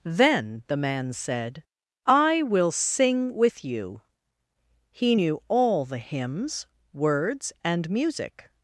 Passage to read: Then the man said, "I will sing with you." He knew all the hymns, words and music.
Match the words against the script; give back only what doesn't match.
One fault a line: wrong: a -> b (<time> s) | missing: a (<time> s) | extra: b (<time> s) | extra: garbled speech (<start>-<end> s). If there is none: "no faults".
no faults